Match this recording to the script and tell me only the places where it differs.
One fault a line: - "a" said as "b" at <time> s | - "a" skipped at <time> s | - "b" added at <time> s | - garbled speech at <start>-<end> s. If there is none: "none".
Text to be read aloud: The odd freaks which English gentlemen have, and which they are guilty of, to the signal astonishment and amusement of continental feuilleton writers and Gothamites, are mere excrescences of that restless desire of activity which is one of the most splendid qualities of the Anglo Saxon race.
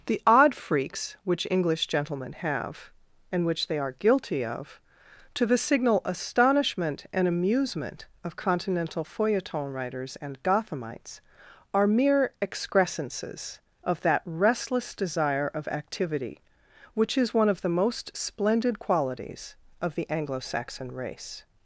none